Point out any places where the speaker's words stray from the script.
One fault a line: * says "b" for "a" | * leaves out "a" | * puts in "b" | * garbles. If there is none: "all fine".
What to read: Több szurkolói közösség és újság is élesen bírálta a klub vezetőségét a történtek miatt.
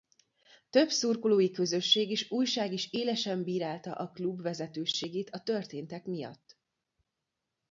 all fine